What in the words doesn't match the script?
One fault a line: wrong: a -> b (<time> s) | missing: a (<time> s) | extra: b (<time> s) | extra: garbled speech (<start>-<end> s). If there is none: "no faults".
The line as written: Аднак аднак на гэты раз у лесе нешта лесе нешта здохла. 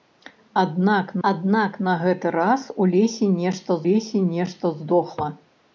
no faults